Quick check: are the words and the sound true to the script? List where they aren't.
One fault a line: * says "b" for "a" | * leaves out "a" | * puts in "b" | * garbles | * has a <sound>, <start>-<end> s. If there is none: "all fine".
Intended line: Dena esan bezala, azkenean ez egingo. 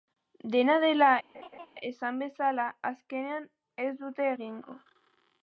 * puts in "dela"
* has a laugh, 1.3-1.7 s
* puts in "dute"